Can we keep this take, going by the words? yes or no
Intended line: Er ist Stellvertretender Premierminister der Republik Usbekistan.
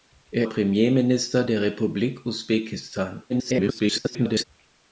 no